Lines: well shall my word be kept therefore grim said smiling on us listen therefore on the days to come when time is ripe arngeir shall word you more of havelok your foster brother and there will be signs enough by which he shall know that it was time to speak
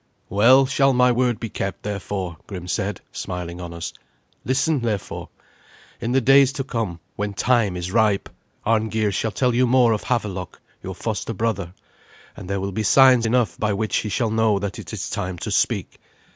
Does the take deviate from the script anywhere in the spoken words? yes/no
yes